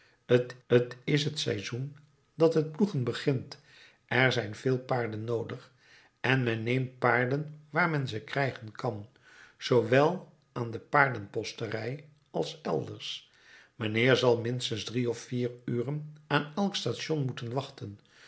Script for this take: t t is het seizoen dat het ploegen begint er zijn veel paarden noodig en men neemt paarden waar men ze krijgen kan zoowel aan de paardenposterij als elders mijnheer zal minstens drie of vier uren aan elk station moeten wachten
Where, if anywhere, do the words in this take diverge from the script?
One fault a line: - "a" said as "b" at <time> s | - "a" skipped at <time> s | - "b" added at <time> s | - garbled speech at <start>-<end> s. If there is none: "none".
none